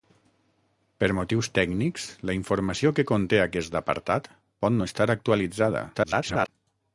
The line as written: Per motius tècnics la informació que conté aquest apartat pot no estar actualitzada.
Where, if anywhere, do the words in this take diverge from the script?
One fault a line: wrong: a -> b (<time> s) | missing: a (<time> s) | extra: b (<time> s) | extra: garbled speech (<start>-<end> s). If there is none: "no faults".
extra: garbled speech (5.9-6.5 s)